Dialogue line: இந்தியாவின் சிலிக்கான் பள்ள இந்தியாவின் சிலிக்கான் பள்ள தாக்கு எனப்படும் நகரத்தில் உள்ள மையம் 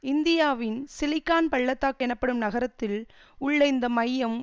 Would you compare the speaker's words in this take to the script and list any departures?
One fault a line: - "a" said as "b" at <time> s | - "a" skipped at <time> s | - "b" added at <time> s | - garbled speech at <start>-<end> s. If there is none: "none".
- "இந்தியாவின் சிலிக்கான் பள்ள" skipped at 1.7 s
- "இந்த" added at 3.7 s